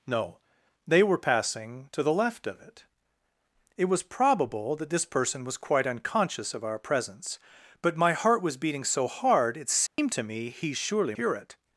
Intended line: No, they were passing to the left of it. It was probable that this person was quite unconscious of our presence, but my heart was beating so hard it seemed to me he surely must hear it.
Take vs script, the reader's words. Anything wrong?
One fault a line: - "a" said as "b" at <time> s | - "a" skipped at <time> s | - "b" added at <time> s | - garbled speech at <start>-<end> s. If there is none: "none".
- "must" skipped at 11.2 s